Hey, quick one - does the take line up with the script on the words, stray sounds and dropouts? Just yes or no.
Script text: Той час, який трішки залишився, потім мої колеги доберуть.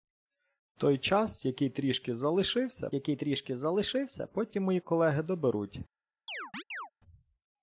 no